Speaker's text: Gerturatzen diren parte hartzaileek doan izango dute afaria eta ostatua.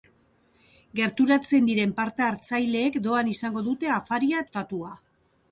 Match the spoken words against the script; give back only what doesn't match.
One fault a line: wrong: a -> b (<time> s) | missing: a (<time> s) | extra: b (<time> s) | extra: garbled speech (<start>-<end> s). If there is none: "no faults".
missing: eta (4.5 s)